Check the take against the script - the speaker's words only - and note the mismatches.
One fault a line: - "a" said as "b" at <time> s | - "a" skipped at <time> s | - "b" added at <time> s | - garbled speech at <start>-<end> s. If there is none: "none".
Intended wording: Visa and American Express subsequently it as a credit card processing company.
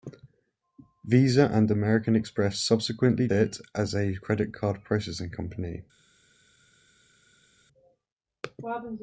none